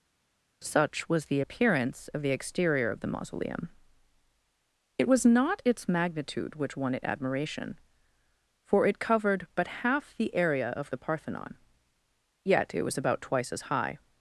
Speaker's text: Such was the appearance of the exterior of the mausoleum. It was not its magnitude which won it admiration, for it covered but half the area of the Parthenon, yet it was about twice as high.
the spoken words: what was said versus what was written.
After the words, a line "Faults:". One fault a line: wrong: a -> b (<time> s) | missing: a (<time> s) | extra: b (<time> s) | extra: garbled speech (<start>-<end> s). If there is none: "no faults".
Such was the appearance of the exterior of the mausoleum. It was not its magnitude which won it admiration, for it covered but half the area of the Parthenon, yet it was about twice as high.
Faults:
no faults